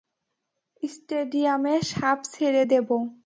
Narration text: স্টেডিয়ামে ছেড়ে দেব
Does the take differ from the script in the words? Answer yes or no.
yes